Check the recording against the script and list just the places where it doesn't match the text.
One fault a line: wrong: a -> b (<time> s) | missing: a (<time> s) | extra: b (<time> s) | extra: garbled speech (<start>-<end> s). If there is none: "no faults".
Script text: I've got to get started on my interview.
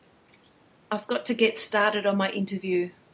no faults